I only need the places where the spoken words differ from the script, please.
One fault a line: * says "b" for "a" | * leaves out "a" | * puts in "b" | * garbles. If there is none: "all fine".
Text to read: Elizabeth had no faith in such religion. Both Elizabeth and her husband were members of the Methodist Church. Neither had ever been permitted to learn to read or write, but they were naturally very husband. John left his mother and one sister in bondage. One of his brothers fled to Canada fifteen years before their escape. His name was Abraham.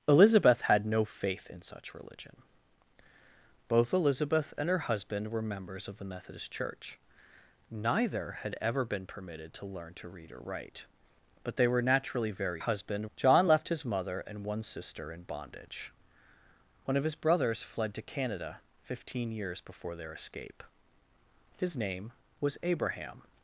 all fine